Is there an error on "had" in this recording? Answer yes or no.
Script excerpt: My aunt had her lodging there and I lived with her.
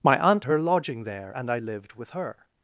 yes